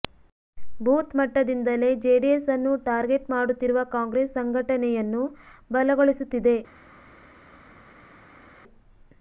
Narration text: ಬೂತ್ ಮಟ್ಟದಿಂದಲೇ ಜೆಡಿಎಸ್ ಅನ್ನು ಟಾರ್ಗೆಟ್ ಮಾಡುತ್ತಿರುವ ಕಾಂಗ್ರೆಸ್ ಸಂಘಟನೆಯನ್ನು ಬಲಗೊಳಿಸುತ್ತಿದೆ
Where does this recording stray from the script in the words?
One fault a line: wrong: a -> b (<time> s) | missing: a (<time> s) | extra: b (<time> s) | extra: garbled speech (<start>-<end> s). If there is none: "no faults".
no faults